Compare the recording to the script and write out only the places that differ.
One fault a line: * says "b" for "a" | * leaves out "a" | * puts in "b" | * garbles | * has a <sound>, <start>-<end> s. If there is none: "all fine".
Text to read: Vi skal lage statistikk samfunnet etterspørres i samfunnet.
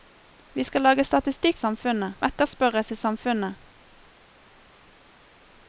all fine